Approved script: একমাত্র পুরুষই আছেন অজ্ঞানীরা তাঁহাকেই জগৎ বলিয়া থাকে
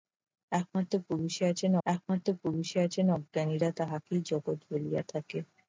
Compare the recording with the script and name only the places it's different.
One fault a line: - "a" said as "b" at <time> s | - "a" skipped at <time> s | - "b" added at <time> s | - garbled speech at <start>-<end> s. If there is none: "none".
- "একমাত্র পুরুষই আছেন" added at 1.9 s